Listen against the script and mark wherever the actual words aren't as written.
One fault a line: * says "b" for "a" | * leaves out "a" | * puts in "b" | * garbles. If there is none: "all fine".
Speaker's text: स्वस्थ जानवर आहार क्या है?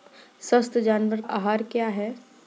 all fine